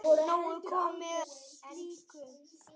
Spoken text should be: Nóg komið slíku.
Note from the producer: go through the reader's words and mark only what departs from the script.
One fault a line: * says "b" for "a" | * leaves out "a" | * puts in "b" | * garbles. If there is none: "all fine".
all fine